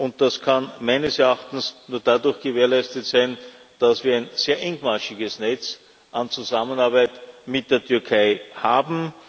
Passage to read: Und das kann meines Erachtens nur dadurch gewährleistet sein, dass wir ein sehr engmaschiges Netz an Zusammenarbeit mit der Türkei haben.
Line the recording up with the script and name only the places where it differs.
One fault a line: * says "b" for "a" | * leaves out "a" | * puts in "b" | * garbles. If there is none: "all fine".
all fine